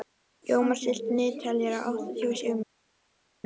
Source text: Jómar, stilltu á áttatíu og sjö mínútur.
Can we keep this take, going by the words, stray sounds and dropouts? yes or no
no